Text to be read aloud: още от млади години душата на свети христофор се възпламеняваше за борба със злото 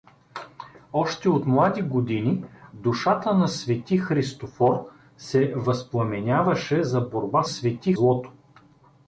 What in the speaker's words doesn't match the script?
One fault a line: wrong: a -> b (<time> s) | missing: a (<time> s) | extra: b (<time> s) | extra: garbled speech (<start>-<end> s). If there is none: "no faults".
wrong: със -> свети (7.4 s)